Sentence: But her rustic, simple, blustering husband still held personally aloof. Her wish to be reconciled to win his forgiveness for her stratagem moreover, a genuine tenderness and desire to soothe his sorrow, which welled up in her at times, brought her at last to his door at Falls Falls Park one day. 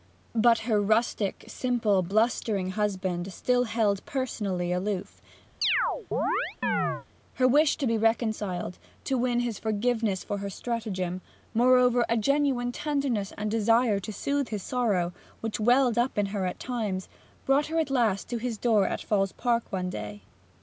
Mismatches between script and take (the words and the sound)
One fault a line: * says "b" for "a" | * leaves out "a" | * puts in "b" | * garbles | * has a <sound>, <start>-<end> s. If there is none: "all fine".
* has a chirp, 5.6-7.1 s
* leaves out "Falls"